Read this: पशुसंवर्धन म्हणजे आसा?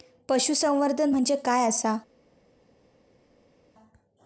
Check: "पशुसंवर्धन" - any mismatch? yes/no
no